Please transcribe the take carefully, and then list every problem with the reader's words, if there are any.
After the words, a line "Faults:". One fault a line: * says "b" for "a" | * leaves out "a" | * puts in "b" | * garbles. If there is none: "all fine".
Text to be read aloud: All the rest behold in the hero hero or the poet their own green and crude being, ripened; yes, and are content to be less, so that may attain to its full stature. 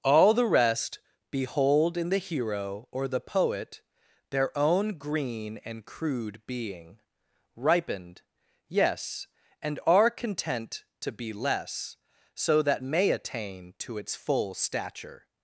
All the rest behold in the hero or the poet their own green and crude being, ripened; yes, and are content to be less, so that may attain to its full stature.
Faults:
* leaves out "hero"